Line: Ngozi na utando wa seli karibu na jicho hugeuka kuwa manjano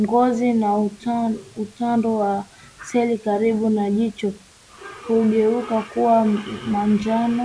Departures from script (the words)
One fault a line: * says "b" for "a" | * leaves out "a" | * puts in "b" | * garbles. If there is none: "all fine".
all fine